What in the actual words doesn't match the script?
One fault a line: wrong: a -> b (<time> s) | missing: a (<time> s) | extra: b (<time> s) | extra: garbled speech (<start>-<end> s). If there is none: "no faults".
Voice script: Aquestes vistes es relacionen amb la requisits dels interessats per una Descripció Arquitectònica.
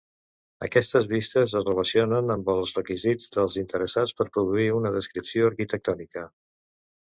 wrong: la -> els (2.6 s)
extra: produir (4.4 s)